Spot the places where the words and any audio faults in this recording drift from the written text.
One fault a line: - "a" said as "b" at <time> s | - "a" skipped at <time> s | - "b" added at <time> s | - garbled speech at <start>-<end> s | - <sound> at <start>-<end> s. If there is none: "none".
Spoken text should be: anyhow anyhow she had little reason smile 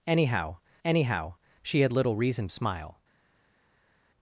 none